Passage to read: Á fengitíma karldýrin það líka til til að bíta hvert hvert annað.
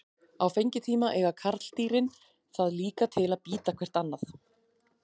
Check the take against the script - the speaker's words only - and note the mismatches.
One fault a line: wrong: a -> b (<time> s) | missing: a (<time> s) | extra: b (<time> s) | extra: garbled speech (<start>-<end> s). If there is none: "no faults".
extra: eiga (1.2 s)
missing: til (3.3 s)
missing: hvert (4.0 s)